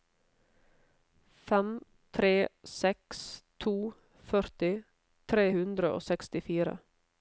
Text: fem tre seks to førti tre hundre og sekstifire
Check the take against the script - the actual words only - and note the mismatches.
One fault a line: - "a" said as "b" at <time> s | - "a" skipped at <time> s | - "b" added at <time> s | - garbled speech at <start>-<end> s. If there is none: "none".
none